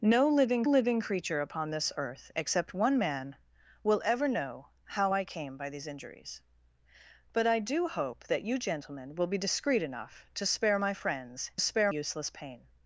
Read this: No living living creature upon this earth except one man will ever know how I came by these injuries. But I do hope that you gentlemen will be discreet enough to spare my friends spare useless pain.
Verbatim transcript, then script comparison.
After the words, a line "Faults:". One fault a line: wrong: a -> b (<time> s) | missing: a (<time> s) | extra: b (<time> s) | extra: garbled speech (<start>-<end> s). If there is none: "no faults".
No living living creature upon this earth except one man will ever know how I came by these injuries. But I do hope that you gentlemen will be discreet enough to spare my friends spare useless pain.
Faults:
no faults